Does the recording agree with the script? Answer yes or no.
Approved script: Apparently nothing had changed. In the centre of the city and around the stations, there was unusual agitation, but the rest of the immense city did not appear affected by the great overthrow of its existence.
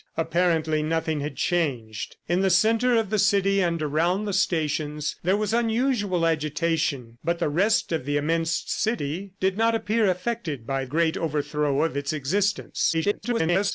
no